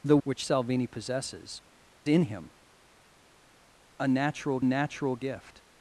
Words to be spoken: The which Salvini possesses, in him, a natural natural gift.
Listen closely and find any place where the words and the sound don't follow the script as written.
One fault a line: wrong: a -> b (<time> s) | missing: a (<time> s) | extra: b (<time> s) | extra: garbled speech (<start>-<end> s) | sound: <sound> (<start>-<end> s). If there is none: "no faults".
no faults